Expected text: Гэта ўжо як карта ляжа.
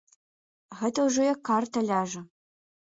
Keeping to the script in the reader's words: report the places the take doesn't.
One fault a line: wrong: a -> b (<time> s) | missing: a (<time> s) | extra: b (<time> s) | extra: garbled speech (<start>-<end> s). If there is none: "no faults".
no faults